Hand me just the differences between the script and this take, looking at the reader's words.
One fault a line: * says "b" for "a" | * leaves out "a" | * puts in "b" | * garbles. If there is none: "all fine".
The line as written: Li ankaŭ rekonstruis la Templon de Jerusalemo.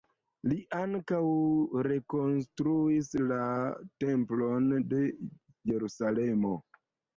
all fine